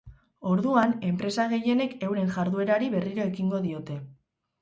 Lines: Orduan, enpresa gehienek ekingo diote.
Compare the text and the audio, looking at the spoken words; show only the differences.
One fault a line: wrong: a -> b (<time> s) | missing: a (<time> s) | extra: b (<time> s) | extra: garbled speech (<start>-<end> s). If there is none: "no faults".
extra: euren jarduerari berriro (2.1 s)